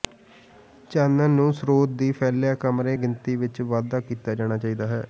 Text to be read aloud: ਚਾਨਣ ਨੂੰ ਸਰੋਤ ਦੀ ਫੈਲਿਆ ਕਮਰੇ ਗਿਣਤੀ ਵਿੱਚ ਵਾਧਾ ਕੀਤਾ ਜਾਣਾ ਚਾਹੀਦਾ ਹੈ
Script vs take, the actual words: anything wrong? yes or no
no